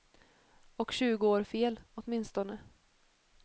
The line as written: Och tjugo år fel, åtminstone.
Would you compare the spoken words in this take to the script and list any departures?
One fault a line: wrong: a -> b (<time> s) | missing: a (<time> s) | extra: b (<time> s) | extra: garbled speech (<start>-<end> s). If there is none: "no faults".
no faults